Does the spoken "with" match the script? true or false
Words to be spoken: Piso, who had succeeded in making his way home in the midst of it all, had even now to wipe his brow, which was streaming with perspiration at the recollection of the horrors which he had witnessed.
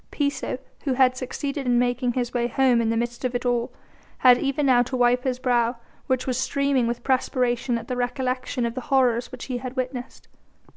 true